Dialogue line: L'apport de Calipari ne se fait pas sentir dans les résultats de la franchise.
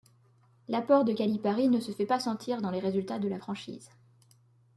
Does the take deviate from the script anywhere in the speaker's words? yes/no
no